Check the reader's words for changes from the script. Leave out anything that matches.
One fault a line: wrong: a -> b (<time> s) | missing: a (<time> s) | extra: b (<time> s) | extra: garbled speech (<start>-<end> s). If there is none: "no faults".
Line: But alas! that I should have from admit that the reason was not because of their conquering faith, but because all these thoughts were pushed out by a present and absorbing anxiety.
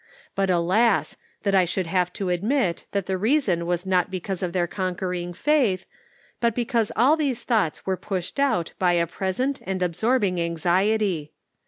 wrong: from -> to (2.1 s)